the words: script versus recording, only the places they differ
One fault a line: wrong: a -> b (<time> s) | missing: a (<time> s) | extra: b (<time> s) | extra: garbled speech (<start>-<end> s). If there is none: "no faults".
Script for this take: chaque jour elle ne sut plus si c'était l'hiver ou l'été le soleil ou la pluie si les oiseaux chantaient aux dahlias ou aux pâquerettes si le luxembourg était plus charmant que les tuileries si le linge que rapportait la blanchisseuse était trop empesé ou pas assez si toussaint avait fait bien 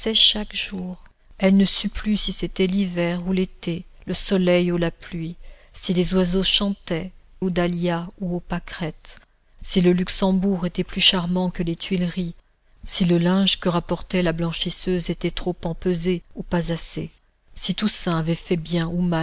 no faults